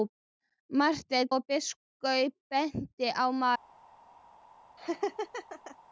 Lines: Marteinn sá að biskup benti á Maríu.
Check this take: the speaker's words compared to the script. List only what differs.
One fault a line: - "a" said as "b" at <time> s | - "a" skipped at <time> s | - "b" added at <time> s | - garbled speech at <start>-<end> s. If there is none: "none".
- "sá" skipped at 1.3 s